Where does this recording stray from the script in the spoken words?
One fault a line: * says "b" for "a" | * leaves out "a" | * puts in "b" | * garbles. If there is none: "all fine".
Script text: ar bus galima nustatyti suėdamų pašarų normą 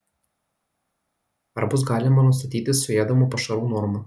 all fine